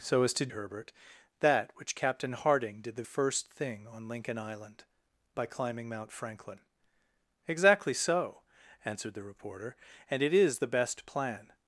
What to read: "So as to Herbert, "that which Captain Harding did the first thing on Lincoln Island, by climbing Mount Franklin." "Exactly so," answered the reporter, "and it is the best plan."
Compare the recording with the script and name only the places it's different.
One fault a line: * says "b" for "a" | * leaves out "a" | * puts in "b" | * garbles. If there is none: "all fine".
all fine